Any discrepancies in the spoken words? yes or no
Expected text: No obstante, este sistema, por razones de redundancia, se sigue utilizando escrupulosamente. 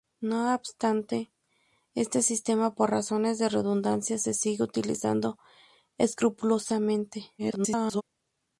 yes